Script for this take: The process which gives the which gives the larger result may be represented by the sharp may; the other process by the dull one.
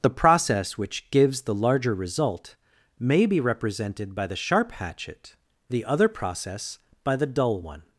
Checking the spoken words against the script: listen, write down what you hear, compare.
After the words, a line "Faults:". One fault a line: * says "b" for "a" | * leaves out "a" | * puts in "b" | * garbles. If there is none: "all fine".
The process which gives the larger result may be represented by the sharp hatchet; the other process by the dull one.
Faults:
* leaves out "which gives the"
* says "hatchet" for "may"